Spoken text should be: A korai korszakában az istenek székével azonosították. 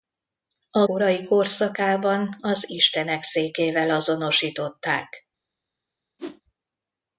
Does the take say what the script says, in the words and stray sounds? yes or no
no